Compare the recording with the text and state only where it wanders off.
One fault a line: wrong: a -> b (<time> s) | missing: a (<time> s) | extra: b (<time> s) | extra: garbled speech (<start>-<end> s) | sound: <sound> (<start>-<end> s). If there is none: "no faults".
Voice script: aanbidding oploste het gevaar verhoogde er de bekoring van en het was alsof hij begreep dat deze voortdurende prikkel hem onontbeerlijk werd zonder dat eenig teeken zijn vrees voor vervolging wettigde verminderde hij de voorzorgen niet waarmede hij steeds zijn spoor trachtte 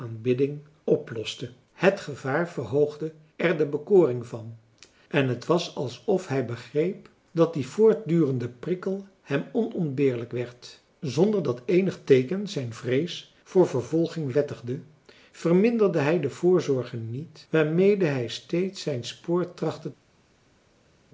wrong: deze -> die (7.5 s)